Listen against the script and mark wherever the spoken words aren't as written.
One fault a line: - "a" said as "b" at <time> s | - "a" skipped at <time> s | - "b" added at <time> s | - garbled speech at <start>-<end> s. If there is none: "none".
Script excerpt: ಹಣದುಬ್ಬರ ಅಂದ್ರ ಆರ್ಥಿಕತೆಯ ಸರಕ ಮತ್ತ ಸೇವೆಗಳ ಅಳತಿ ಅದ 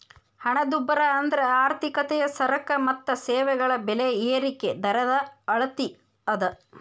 - "ಬೆಲೆ ಏರಿಕಿ ದರದ" added at 3.9 s